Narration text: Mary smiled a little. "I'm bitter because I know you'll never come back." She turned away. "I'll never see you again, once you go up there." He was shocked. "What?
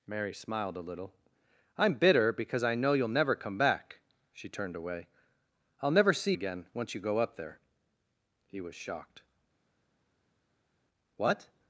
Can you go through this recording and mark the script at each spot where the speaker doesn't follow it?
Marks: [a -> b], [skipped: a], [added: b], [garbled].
Mary smiled a little. "I'm bitter because I know you'll never come back." She turned away. "I'll never see [skipped: you] again, once you go up there." He was shocked. "What?